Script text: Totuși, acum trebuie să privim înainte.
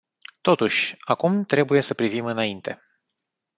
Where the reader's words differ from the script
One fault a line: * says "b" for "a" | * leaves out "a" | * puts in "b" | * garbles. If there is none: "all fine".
all fine